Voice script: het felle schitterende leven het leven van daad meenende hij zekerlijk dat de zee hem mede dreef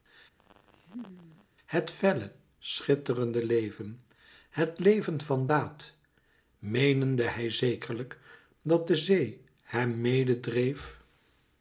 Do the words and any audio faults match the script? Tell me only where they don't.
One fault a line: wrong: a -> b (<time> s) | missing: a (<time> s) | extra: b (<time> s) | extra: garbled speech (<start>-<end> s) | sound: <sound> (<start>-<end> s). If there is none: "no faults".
sound: laugh (0.4-1.5 s)